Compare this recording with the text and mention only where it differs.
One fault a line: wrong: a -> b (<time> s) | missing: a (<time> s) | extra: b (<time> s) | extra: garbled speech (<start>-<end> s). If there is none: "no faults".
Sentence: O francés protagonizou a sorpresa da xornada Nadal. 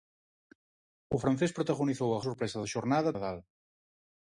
no faults